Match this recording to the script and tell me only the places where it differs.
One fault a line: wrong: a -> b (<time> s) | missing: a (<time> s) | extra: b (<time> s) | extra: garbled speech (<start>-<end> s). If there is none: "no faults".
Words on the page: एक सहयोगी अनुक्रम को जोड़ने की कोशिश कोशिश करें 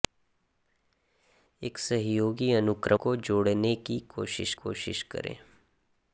no faults